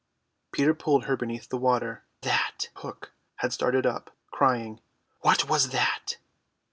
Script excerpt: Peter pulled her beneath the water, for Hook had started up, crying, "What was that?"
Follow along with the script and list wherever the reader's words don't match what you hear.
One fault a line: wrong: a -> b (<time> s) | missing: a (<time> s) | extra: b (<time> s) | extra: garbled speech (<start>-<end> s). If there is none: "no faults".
wrong: for -> that (2.2 s)